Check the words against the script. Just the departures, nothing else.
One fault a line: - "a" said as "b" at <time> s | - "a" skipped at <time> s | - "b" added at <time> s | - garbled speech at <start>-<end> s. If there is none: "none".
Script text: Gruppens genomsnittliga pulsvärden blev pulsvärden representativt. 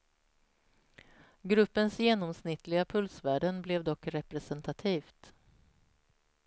- "pulsvärden" said as "dock" at 3.8 s